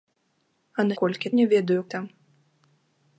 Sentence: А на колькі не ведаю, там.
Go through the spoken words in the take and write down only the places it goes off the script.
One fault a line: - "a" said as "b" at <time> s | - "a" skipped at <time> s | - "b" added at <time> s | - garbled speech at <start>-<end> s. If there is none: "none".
none